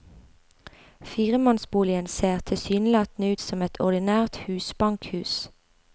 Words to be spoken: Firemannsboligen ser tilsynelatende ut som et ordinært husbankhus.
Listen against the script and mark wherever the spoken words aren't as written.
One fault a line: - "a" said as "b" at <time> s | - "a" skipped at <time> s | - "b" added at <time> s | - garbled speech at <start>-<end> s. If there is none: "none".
none